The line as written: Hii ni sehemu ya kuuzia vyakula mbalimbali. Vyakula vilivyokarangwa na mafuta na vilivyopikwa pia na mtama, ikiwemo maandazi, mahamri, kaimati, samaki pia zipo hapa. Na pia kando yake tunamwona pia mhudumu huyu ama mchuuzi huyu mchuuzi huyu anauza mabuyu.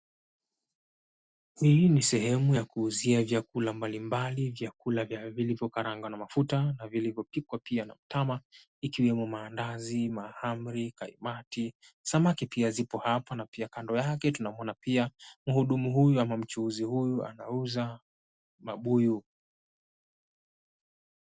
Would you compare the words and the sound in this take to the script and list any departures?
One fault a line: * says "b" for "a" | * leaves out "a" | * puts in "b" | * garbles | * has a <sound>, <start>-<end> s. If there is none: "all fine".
* leaves out "mchuuzi huyu"